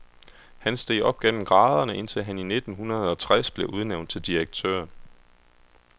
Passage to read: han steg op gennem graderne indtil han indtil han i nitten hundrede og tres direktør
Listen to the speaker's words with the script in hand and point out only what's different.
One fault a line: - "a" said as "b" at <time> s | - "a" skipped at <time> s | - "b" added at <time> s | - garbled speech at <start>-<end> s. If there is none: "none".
- "indtil han" skipped at 2.4 s
- "blev udnævnt til" added at 3.5 s